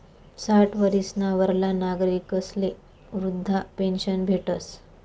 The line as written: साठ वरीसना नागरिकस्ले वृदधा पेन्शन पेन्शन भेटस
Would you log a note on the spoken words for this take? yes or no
yes